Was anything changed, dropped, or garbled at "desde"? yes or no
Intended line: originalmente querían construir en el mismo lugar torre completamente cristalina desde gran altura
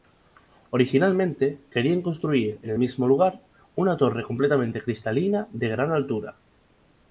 yes